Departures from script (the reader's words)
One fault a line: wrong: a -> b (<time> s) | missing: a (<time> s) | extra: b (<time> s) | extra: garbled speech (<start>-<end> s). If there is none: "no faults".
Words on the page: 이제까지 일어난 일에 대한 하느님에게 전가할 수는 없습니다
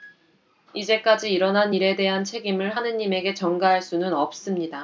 extra: 책임을 (2.2 s)